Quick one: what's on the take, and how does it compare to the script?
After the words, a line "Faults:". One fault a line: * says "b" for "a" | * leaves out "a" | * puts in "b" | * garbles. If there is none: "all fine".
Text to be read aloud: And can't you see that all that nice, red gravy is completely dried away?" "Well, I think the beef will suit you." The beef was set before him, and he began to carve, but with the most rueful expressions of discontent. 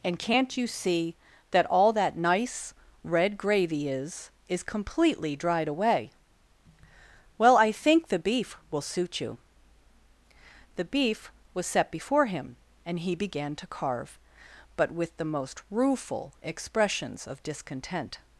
And can't you see that all that nice, red gravy is is completely dried away?" "Well, I think the beef will suit you." The beef was set before him, and he began to carve, but with the most rueful expressions of discontent.
Faults:
* puts in "is"